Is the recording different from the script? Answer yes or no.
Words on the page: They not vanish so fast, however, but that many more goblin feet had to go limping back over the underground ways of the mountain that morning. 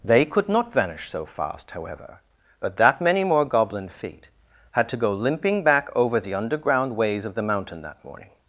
yes